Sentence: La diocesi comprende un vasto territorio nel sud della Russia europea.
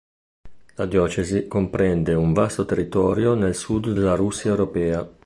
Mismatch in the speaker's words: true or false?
false